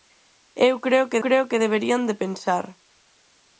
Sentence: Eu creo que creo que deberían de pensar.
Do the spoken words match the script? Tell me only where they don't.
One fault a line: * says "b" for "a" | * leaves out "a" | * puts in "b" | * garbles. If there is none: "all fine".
all fine